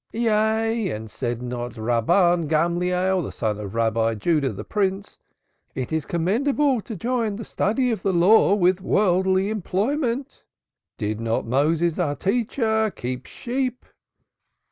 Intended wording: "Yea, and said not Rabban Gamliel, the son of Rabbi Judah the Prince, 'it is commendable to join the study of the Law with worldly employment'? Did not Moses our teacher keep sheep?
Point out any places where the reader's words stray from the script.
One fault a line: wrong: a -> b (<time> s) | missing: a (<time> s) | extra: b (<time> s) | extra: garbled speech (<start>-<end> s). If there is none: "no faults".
no faults